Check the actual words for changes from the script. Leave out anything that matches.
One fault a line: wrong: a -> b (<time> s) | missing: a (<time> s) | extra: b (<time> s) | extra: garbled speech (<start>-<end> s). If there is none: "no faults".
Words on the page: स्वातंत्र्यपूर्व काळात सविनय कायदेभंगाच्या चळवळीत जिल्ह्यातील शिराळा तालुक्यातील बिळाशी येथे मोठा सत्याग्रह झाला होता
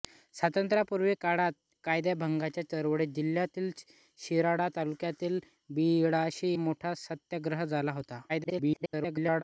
missing: सविनय (1.5 s)
missing: येथे (6.5 s)
extra: garbled speech (8.3-9.4 s)